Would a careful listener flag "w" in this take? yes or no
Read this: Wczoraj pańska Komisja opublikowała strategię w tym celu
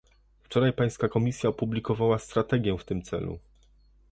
no